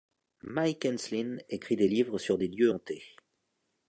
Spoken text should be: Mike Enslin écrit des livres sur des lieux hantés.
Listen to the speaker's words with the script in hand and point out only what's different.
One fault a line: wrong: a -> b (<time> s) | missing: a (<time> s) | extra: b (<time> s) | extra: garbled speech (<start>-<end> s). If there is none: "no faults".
no faults